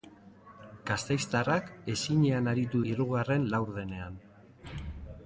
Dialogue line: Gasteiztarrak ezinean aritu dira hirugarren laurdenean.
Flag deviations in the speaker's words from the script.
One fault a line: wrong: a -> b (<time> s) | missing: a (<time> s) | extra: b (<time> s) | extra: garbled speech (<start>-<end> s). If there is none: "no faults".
missing: dira (2.8 s)